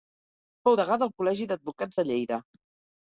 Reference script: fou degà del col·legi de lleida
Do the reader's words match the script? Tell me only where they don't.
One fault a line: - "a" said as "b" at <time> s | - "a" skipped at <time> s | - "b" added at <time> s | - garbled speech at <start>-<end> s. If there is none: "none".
- "d'advocats" added at 1.5 s